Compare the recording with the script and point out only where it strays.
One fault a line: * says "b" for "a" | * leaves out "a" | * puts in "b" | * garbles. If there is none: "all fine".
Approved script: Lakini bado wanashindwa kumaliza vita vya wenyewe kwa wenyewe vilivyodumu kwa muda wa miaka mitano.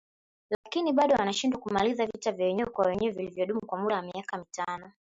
all fine